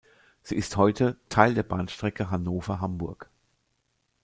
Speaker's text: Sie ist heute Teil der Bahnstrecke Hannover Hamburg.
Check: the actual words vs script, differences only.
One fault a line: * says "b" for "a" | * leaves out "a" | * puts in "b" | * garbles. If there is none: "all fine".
all fine